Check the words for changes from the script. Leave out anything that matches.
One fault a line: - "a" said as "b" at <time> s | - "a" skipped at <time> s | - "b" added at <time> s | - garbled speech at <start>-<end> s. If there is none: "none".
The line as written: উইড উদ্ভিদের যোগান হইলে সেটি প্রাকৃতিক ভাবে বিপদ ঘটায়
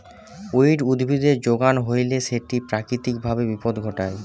none